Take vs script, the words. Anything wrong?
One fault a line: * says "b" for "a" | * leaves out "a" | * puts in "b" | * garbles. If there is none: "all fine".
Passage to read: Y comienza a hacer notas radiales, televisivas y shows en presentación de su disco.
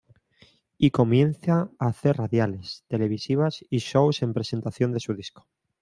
* leaves out "notas"